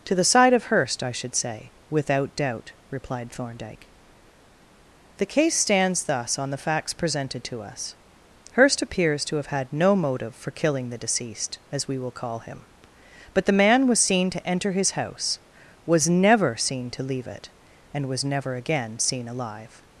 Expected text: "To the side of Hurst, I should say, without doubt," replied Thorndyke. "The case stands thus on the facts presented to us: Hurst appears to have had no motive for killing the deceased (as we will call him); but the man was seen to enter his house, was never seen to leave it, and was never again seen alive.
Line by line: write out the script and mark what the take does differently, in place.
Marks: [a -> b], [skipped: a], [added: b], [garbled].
"To the side of Hurst, I should say, without doubt," replied Thorndyke. "The case stands thus on the facts presented to us: Hurst appears to have had no motive for killing the deceased (as we will call him); but the man was seen to enter his house, was never seen to leave it, and was never again seen alive.